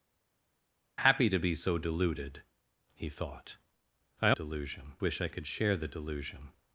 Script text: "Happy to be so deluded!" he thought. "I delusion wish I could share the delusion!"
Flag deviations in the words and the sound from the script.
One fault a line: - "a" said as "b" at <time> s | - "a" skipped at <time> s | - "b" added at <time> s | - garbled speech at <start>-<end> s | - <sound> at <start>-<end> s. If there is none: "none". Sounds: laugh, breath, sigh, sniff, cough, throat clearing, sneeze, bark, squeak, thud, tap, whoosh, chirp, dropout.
none